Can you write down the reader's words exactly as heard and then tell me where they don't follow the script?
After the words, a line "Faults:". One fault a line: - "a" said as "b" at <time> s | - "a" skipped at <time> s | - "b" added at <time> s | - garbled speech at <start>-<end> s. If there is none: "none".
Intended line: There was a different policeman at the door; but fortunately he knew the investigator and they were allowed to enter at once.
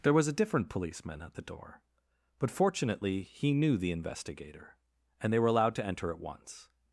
There was a different policeman at the door; but fortunately he knew the investigator and they were allowed to enter at once.
Faults:
none